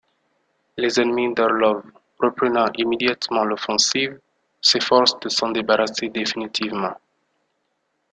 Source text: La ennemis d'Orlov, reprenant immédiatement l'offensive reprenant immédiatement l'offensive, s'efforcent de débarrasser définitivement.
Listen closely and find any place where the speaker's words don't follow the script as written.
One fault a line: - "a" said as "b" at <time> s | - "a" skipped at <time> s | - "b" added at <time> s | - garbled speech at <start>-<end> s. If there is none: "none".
- "La" said as "Les" at 0.8 s
- "reprenant immédiatement l'offensive" skipped at 4.2 s
- "s'en" added at 5.3 s